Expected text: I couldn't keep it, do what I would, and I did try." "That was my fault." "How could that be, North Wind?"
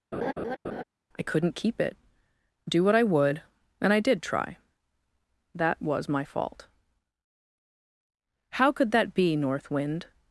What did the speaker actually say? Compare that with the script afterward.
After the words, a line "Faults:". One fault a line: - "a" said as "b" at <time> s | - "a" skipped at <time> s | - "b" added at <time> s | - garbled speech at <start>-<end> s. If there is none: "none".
I couldn't keep it, do what I would, and I did try." "That was my fault." "How could that be, North Wind?"
Faults:
none